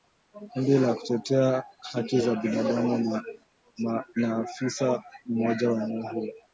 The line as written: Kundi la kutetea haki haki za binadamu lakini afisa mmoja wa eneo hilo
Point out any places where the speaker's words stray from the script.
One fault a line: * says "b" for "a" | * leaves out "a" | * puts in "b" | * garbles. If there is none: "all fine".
* leaves out "haki"
* says "na" for "lakini"